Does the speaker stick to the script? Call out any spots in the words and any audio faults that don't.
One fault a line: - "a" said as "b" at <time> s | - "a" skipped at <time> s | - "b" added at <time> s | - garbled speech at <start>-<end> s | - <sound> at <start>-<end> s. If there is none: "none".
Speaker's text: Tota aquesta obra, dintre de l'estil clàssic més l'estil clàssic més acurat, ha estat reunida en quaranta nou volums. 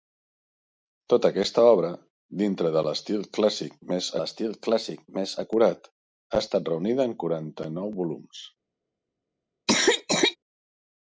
- cough at 9.7-10.4 s